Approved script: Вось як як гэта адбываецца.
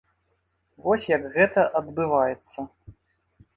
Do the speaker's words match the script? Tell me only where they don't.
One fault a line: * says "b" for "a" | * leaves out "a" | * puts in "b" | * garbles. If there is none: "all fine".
* leaves out "як"